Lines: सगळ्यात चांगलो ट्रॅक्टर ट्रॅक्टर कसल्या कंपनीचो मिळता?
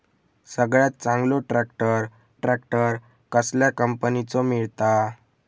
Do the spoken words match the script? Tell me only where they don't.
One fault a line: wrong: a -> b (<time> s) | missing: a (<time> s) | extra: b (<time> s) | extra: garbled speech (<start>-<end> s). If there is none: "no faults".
no faults